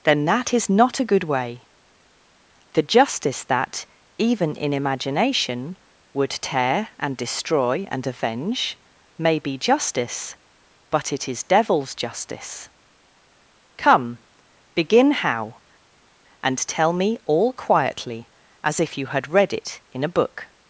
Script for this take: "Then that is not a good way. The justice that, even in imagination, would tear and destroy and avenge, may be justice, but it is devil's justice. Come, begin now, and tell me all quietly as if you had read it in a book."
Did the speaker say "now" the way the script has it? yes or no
no